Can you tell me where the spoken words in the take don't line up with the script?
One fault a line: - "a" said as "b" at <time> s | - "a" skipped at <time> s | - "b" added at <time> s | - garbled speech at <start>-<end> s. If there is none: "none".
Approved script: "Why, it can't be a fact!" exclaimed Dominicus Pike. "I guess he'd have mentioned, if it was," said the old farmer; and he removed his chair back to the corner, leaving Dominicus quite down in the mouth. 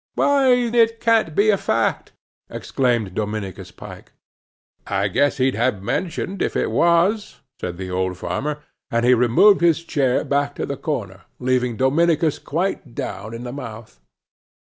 none